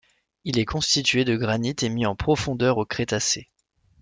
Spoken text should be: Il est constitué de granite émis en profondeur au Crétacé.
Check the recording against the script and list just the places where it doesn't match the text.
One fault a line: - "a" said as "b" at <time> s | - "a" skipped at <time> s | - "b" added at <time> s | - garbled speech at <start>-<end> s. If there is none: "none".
none